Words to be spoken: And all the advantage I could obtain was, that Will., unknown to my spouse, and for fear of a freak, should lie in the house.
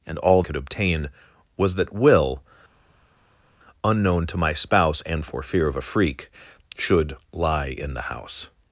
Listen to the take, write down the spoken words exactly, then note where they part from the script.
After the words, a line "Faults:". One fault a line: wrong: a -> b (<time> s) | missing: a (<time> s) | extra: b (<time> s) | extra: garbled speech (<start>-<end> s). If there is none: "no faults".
And all could obtain was, that Will., unknown to my spouse, and for fear of a freak, should lie in the house.
Faults:
missing: the advantage I (0.4 s)